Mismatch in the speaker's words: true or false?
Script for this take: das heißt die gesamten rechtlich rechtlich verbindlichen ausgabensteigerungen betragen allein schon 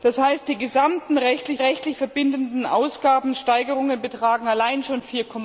false